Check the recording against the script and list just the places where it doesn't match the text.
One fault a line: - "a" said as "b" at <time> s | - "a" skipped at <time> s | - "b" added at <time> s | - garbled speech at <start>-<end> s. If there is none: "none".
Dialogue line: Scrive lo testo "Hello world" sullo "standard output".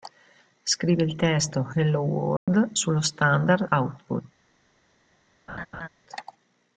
- "lo" said as "il" at 1.0 s